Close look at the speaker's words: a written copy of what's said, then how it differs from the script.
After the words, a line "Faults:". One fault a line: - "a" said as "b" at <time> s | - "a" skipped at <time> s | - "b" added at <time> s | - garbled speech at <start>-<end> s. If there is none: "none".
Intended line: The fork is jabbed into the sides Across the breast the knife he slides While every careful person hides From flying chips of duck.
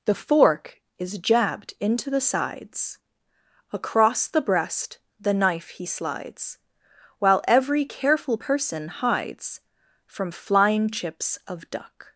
The fork is jabbed into the sides Across the breast the knife he slides While every careful person hides From flying chips of duck.
Faults:
none